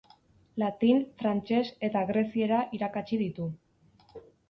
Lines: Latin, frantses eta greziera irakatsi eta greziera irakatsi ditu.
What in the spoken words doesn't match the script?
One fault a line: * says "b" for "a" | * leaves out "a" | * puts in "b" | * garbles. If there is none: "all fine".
* leaves out "eta greziera irakatsi"